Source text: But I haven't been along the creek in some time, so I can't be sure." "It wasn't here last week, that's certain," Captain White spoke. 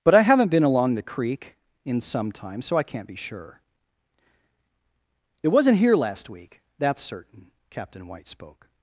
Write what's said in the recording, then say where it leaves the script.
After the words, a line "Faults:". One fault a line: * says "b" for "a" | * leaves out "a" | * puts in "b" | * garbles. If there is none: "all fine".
But I haven't been along the creek in some time, so I can't be sure." "It wasn't here last week, that's certain," Captain White spoke.
Faults:
all fine